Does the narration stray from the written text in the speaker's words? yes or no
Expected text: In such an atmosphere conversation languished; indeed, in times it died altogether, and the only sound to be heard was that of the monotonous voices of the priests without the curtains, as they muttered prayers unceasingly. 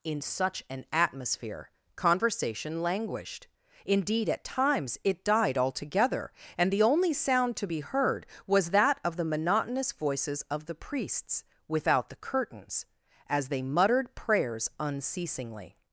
yes